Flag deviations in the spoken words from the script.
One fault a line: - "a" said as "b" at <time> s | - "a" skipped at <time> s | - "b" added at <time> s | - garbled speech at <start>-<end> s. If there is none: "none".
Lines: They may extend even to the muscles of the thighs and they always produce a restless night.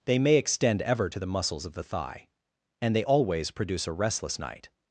- "even" said as "ever" at 0.8 s
- "thighs" said as "thigh" at 1.8 s